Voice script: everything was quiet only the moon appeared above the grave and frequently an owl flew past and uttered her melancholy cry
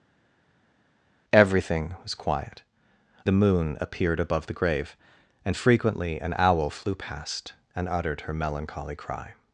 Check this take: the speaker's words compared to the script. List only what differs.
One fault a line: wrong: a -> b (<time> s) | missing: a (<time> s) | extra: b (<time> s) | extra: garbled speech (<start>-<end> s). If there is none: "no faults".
missing: only (2.6 s)